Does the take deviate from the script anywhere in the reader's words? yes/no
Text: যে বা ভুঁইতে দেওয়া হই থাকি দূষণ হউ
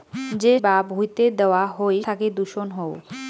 no